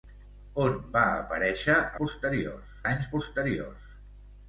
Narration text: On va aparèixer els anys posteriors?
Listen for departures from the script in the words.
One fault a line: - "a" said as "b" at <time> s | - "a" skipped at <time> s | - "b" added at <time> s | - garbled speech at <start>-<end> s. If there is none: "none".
- "els" said as "posteriors" at 2.0 s